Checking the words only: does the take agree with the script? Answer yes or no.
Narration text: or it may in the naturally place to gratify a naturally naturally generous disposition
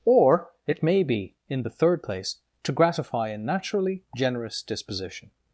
no